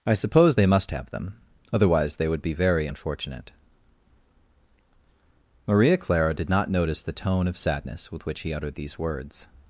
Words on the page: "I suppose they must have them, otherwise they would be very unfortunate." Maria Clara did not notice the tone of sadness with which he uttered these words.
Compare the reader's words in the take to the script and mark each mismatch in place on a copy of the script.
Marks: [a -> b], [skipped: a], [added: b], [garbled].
"I suppose they must have them, otherwise they would be very unfortunate." Maria Clara did not notice the tone of sadness with which he uttered these words.